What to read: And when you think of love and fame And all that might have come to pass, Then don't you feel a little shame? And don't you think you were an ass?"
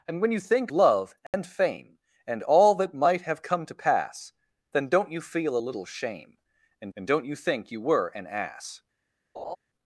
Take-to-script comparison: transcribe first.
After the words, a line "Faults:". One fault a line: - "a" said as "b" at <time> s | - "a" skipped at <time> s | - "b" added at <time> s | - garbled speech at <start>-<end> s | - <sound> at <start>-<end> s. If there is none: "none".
And when you think love and fame And all that might have come to pass, Then don't you feel a little shame? And and don't you think you were an ass?"
Faults:
- "of" skipped at 0.7 s
- dropout at 1.3-1.3 s
- "and" added at 7.0 s
- laugh at 9.3-9.6 s